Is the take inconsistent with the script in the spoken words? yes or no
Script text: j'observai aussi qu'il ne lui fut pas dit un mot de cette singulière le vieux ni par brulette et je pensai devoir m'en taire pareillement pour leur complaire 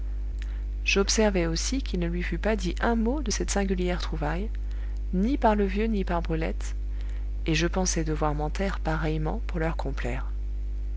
yes